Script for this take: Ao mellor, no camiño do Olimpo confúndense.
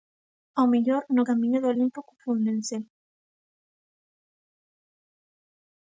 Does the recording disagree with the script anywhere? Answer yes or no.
no